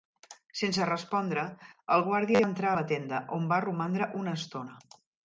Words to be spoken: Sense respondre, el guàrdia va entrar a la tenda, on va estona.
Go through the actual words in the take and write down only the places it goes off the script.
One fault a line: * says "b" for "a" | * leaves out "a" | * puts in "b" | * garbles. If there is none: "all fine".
* puts in "romandre una"